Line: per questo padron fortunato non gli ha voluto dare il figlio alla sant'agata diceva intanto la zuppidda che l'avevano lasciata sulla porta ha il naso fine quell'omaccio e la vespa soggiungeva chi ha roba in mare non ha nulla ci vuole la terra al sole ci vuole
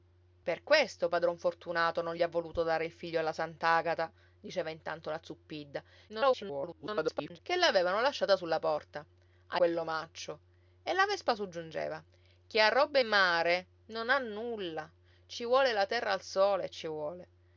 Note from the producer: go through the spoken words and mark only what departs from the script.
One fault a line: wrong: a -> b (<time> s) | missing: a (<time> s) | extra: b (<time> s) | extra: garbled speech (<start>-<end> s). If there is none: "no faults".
extra: garbled speech (6.1-7.4 s)
missing: il naso fine (9.6 s)
missing: in (13.0 s)